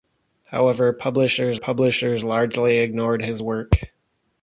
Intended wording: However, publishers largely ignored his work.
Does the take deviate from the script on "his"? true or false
false